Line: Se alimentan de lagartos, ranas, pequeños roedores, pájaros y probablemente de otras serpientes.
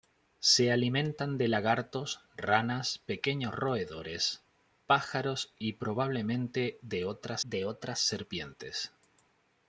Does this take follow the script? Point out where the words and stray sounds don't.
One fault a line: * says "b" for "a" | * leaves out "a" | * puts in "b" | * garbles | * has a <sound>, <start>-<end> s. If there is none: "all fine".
* puts in "de otras"